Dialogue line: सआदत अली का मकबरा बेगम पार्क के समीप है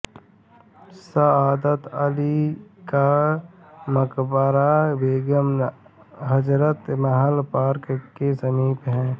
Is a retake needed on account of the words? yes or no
yes